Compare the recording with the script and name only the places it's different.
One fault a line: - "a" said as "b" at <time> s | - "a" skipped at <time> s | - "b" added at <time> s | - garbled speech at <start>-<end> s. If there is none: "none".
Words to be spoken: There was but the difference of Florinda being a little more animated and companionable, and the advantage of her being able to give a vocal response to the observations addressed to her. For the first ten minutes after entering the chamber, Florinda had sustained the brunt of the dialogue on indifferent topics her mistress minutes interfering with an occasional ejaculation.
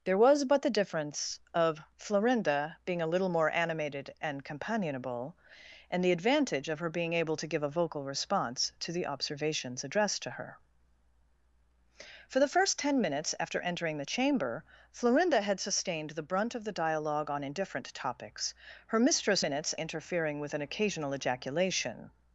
none